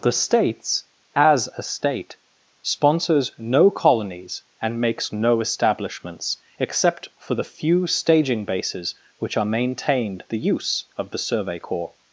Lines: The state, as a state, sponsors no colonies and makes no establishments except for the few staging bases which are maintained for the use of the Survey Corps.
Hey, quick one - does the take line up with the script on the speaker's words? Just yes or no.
no